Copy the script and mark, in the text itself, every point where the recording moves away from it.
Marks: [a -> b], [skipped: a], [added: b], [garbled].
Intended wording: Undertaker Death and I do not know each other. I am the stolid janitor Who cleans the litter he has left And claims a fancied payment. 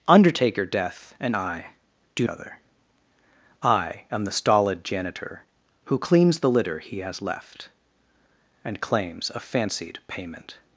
Undertaker Death and I do [skipped: not know each] other. I am the stolid janitor Who cleans the litter he has left And claims a fancied payment.